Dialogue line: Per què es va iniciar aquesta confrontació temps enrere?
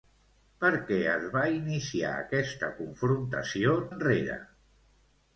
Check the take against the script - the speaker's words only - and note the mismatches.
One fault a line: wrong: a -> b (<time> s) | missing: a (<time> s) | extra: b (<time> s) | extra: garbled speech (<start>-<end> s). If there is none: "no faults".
missing: temps (3.8 s)